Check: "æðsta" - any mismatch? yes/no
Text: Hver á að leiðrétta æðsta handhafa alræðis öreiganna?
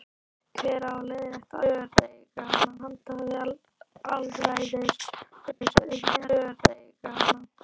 yes